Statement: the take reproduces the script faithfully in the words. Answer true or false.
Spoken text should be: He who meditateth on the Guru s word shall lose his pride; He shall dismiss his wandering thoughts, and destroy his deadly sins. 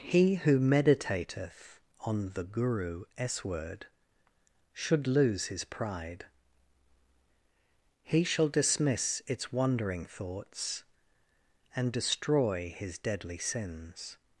false